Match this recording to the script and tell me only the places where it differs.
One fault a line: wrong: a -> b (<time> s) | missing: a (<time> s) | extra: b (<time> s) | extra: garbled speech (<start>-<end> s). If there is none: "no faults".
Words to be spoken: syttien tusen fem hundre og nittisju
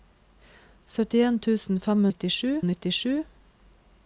wrong: hundre -> nittisju (2.1 s)